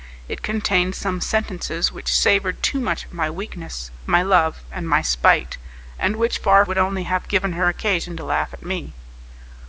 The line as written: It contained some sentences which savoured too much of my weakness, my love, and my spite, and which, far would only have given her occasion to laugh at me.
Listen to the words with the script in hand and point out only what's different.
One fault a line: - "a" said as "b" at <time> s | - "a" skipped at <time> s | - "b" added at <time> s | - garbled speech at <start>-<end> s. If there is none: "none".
none